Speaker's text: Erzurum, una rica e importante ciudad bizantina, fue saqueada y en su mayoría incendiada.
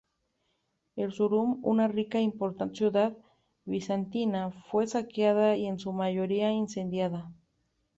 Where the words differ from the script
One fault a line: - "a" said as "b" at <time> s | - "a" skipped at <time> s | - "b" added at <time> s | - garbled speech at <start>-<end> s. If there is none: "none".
none